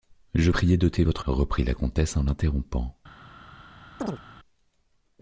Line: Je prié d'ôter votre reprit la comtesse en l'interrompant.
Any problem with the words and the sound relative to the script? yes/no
yes